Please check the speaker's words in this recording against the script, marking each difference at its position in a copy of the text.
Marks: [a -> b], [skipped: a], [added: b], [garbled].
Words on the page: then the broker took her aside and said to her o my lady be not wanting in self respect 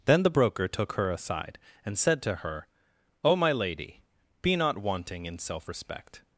then the broker took her aside and said to her o my lady be not wanting in self respect